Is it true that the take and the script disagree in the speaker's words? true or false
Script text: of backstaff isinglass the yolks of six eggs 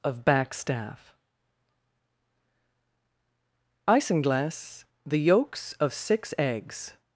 false